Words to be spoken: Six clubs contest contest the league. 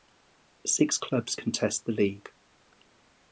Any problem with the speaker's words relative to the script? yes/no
yes